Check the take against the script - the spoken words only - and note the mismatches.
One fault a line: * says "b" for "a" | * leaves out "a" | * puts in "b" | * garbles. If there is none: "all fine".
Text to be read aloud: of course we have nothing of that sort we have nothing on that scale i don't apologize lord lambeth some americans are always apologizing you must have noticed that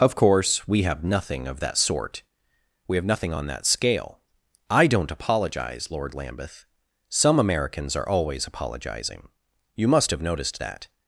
all fine